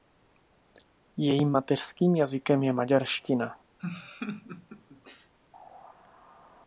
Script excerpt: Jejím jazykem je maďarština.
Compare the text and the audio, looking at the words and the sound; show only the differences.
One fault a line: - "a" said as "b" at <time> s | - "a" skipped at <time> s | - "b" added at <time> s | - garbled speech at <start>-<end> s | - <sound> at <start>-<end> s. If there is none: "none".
- "mateřským" added at 1.5 s
- laugh at 3.8-5.3 s